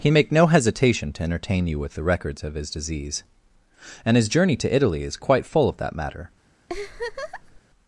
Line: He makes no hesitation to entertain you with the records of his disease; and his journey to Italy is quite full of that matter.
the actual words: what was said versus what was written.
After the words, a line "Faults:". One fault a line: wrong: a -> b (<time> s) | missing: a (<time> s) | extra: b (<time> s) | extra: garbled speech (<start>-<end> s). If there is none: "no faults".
He make no hesitation to entertain you with the records of his disease; and his journey to Italy is quite full of that matter.
Faults:
wrong: makes -> make (0.1 s)